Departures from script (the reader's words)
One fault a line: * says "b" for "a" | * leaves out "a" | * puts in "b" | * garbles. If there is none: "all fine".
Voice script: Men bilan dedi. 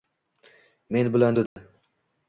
all fine